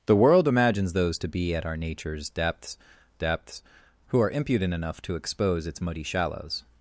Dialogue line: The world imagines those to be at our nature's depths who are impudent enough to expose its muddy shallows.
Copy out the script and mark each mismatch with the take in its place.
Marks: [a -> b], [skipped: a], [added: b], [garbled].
The world imagines those to be at our nature's depths [added: depths] who are impudent enough to expose its muddy shallows.